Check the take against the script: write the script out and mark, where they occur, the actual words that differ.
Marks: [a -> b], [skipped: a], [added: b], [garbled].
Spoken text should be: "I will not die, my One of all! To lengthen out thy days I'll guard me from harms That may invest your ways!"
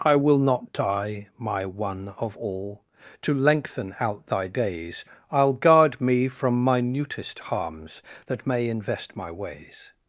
"I will not die, my One of all! To lengthen out thy days I'll guard me from [added: minutest] harms That may invest [your -> my] ways!"